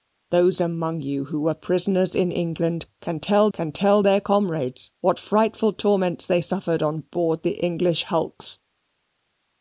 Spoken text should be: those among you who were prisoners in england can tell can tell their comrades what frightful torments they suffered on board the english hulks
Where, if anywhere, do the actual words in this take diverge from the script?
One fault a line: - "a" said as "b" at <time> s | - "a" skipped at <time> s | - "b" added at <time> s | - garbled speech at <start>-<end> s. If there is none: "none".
none